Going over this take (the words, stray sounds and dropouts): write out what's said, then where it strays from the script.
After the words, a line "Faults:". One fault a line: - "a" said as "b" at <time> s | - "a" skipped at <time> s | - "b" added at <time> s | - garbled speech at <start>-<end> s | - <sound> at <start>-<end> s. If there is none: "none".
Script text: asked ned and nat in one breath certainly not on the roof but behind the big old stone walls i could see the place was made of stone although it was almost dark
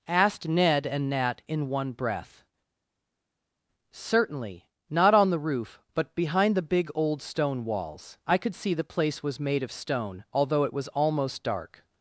asked ned and nat in one breath certainly not on the roof but behind the big old stone walls i could see the place was made of stone although it was almost dark
Faults:
none